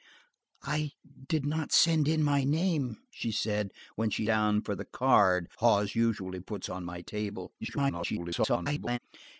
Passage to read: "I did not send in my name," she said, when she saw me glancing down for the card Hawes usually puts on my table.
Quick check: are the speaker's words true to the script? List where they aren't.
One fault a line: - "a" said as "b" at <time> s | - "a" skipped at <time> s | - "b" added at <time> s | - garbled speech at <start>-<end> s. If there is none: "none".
- "saw me glancing" skipped at 4.2 s
- garbled speech at 7.6-9.0 s